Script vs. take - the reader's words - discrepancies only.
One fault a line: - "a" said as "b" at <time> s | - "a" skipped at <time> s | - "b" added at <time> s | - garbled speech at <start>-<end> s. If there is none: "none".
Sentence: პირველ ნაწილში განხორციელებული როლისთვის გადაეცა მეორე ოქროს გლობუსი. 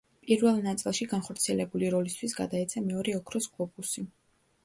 none